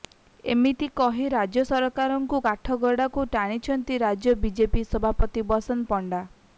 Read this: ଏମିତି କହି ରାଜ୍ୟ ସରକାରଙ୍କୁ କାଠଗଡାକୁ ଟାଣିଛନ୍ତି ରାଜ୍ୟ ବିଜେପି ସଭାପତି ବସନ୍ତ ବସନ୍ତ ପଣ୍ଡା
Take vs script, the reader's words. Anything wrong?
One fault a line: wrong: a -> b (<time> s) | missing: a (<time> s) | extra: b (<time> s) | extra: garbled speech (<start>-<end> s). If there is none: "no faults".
missing: ବସନ୍ତ (5.9 s)